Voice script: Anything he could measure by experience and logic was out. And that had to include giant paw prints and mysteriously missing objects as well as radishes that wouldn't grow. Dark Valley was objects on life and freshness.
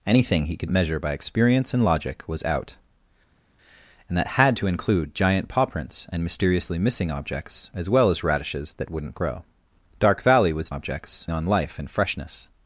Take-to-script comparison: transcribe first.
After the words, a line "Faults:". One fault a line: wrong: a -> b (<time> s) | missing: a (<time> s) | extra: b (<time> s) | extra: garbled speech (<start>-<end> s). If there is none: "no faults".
Anything he could measure by experience and logic was out. And that had to include giant paw prints and mysteriously missing objects as well as radishes that wouldn't grow. Dark Valley was objects on life and freshness.
Faults:
no faults